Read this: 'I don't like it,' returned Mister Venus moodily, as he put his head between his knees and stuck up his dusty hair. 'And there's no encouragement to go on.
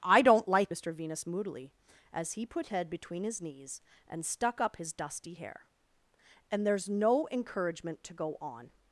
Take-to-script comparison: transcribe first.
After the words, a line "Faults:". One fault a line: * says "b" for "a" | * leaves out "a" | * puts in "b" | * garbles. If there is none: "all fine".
'I don't like Mister Venus moodily, as he put head between his knees and stuck up his dusty hair. 'And there's no encouragement to go on.
Faults:
* leaves out "it returned"
* leaves out "his"